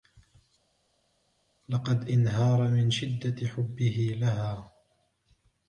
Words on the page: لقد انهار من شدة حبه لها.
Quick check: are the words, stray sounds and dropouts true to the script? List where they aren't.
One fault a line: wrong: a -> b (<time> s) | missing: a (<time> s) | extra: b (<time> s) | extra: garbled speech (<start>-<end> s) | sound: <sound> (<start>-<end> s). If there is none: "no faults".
no faults